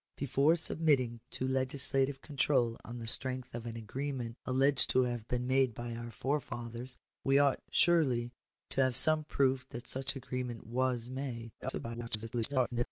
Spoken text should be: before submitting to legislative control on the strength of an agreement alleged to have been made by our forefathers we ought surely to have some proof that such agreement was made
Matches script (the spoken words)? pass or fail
fail